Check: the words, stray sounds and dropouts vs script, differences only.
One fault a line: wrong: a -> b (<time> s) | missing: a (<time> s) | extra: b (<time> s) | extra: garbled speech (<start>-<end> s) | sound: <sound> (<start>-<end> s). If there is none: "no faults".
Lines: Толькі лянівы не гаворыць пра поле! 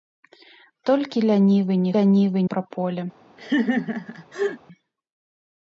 wrong: гаворыць -> лянівы (2.0 s)
sound: laugh (3.4-4.6 s)